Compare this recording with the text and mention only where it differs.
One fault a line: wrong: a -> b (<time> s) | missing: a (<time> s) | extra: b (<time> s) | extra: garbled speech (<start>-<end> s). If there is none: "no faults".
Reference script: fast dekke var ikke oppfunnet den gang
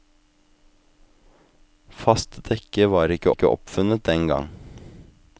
extra: ikke (3.3 s)